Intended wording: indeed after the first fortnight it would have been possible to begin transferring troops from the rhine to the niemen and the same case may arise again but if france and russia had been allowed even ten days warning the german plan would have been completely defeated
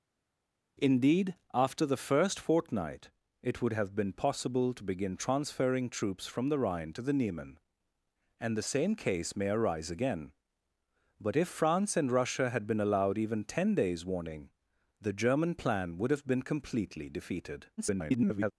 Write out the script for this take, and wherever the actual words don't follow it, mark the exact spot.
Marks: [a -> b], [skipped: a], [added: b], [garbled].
indeed after the first fortnight it would have been possible to begin transferring troops from the rhine to the niemen and the same case may arise again but if france and russia had been allowed even ten days warning the german plan would have been completely defeated [garbled]